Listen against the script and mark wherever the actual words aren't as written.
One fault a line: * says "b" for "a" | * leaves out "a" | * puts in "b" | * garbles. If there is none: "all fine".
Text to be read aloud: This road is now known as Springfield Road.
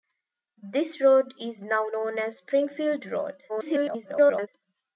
* garbles